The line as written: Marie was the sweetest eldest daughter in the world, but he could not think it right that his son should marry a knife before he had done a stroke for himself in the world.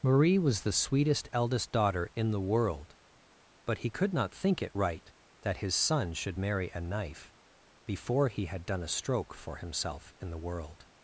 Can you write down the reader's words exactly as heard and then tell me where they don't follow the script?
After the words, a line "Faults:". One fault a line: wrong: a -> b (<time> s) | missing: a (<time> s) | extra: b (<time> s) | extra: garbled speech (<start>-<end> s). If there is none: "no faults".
Marie was the sweetest eldest daughter in the world, but he could not think it right that his son should marry a knife before he had done a stroke for himself in the world.
Faults:
no faults